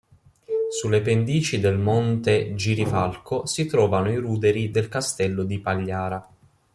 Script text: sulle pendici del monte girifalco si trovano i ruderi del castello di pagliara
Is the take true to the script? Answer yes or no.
yes